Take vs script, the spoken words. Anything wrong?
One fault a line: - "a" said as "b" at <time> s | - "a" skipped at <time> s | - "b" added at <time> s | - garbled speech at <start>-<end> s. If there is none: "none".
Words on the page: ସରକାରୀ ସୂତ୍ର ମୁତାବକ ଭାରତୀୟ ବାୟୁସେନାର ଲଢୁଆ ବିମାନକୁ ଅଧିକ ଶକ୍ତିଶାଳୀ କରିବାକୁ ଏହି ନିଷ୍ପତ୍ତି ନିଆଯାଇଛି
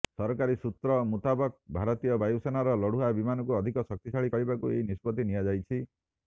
none